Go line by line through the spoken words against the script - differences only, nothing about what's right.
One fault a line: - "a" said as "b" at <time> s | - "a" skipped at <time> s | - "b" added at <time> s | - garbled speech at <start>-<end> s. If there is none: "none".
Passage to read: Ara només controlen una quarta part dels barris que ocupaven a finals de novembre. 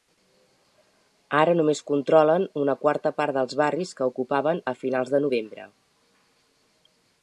none